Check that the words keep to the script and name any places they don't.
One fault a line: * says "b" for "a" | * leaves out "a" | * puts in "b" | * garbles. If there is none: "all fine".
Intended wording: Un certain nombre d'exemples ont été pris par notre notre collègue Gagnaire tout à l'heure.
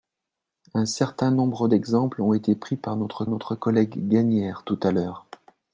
all fine